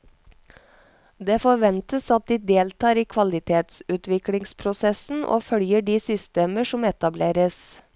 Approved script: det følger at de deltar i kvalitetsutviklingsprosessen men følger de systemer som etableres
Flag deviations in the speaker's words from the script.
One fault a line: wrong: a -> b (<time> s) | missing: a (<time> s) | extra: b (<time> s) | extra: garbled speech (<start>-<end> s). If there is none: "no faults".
wrong: følger -> forventes (1.4 s)
wrong: men -> og (5.2 s)